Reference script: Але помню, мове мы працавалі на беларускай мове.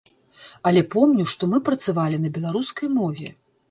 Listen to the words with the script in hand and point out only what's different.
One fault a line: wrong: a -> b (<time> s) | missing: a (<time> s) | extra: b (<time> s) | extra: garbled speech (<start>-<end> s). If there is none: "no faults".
wrong: мове -> што (1.4 s)